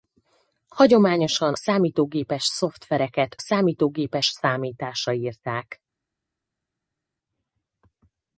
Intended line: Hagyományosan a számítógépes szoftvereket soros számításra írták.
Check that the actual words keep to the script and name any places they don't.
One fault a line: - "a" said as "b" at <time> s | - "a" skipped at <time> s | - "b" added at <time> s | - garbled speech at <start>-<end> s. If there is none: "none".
- "a" skipped at 1.5 s
- "soros" said as "számítógépes" at 3.4 s